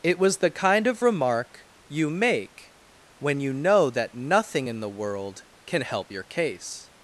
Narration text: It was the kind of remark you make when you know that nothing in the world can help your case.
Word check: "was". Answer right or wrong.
right